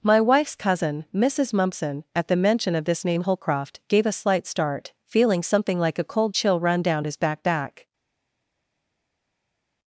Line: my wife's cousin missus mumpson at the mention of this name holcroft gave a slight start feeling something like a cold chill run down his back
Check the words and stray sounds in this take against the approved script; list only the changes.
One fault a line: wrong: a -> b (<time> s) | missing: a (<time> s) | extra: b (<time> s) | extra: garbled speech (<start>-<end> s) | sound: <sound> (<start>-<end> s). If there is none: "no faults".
extra: back (7.4 s)